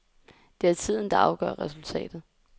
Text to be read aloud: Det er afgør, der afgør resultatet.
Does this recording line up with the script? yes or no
no